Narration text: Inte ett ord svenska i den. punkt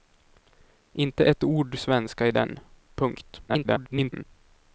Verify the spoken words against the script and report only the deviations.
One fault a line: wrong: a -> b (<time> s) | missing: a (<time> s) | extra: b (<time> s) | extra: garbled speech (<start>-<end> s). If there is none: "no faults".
extra: garbled speech (3.5-4.3 s)